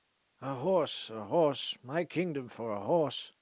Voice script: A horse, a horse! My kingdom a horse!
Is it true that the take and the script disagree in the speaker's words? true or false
true